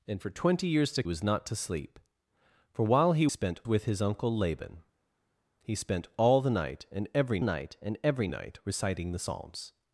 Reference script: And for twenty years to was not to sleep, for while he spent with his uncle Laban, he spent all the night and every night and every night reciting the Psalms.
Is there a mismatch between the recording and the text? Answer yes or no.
no